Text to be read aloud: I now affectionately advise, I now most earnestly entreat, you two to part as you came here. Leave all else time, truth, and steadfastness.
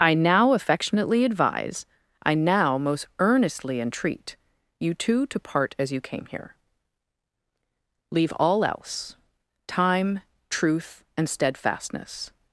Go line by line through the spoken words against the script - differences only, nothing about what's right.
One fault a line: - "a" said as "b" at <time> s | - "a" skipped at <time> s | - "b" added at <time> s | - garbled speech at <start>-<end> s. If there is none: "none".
none